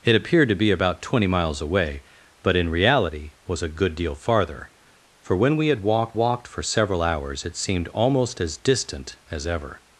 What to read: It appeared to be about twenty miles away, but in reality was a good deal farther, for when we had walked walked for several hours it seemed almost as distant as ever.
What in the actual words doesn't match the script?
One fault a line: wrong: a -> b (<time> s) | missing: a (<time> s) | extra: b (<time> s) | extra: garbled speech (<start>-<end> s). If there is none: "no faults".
no faults